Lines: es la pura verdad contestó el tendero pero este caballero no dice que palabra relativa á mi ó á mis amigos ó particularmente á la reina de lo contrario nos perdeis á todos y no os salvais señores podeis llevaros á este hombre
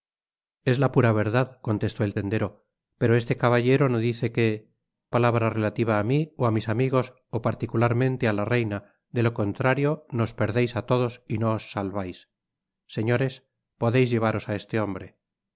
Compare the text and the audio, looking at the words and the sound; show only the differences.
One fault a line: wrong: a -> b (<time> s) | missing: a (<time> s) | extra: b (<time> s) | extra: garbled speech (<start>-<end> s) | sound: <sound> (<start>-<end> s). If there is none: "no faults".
no faults